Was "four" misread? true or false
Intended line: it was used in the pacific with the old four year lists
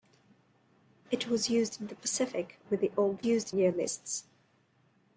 true